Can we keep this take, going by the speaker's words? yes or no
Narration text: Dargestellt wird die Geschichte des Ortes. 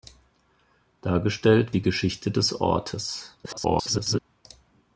no